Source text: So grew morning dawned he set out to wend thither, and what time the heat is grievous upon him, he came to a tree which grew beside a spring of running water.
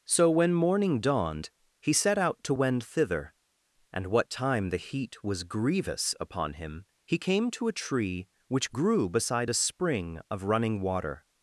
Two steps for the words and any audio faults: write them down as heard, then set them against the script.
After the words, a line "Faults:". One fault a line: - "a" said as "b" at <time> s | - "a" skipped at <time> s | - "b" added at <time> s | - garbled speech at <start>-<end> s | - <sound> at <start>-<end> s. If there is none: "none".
So when morning dawned he set out to wend thither, and what time the heat was grievous upon him, he came to a tree which grew beside a spring of running water.
Faults:
- "grew" said as "when" at 0.3 s
- "is" said as "was" at 5.2 s